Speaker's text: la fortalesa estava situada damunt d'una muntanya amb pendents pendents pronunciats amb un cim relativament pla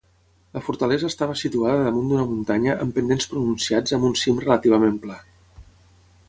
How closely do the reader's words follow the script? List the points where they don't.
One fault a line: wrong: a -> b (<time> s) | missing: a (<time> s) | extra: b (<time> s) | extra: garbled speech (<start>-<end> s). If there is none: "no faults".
missing: pendents (3.3 s)